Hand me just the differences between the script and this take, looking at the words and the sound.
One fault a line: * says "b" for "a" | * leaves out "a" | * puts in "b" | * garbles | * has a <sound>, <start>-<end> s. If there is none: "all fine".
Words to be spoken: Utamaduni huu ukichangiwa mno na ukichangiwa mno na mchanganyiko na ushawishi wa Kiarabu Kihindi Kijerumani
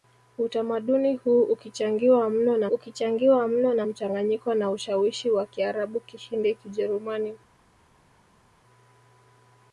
all fine